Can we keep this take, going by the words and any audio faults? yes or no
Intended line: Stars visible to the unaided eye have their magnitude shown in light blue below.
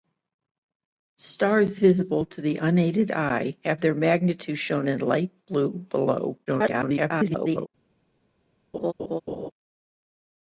no